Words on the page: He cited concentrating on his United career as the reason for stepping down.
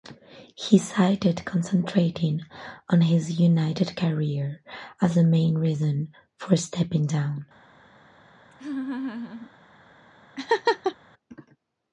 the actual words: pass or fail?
fail